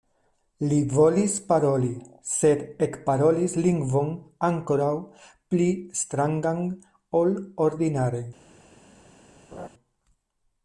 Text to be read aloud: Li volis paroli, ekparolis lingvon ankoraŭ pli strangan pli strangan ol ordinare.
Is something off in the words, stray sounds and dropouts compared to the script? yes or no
yes